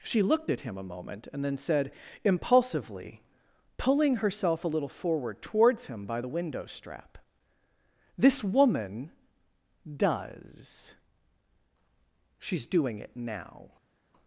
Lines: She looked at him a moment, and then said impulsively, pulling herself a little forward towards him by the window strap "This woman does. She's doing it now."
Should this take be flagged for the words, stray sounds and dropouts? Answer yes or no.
no